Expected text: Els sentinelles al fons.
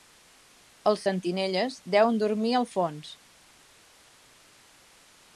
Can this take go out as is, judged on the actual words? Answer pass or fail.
fail